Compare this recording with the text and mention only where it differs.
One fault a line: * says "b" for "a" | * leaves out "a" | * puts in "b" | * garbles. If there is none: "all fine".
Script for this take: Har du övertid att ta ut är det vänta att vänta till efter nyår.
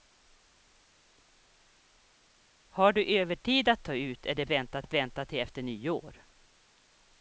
all fine